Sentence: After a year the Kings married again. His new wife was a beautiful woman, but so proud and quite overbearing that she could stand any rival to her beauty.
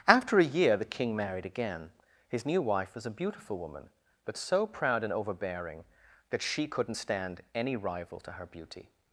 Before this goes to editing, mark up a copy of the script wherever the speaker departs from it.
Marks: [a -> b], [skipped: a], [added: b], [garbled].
After a year the [Kings -> King] married again. His new wife was a beautiful woman, but so proud and [skipped: quite] overbearing that she [could -> couldn't] stand any rival to her beauty.